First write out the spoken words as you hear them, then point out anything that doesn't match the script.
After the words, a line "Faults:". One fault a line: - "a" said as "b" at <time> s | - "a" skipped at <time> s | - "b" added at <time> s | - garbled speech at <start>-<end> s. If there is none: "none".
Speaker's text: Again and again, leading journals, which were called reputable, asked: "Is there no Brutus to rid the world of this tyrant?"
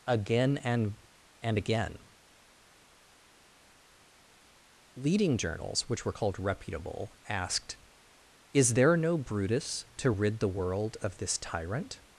Again and and again, leading journals, which were called reputable, asked: "Is there no Brutus to rid the world of this tyrant?"
Faults:
- "and" added at 1.4 s